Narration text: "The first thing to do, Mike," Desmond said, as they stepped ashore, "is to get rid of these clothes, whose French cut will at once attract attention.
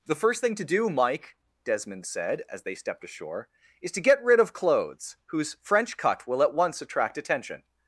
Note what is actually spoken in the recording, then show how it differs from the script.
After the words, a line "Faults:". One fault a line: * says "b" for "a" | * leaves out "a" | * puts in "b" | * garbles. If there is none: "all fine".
"The first thing to do, Mike," Desmond said, as they stepped ashore, "is to get rid of clothes, whose French cut will at once attract attention.
Faults:
* leaves out "these"